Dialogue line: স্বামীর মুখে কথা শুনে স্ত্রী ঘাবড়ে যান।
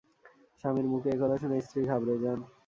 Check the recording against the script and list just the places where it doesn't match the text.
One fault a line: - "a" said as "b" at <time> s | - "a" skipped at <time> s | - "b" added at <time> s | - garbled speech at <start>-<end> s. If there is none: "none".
- "এ" added at 1.1 s